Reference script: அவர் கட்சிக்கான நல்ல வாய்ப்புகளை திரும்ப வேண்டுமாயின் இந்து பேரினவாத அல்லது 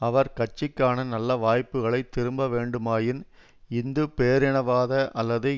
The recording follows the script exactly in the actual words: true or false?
true